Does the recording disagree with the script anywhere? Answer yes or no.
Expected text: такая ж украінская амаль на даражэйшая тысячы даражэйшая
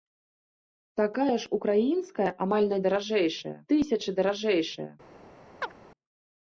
no